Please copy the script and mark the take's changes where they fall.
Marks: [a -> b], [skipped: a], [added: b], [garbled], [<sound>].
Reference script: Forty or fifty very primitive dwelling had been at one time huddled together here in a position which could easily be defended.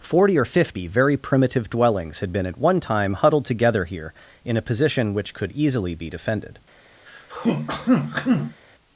Forty or fifty very primitive [dwelling -> dwellings] had been at one time huddled together here in a position which could easily be defended. [throat clearing]